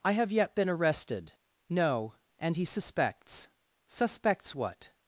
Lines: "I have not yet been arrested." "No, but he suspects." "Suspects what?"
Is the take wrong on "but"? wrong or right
wrong